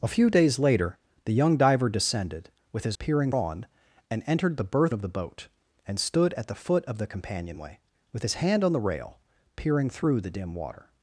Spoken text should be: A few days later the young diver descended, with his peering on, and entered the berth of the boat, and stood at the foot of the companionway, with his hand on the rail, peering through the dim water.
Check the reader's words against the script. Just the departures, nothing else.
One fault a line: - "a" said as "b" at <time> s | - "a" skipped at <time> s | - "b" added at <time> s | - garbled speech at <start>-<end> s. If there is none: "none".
none